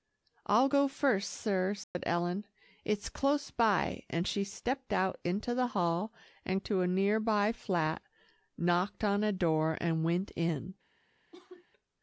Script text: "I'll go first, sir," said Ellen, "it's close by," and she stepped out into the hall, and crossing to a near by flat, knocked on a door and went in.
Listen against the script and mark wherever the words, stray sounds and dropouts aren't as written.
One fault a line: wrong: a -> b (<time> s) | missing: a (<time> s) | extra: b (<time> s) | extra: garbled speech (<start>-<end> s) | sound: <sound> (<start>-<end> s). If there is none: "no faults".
sound: dropout (1.8-1.9 s)
missing: crossing (6.6 s)
sound: cough (11.3-11.7 s)